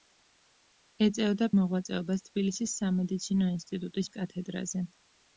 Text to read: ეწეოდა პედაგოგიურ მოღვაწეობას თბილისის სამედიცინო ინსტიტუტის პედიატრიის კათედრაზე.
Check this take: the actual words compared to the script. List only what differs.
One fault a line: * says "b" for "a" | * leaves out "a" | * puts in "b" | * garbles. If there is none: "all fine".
* leaves out "პედაგოგიურ"
* leaves out "პედიატრიის"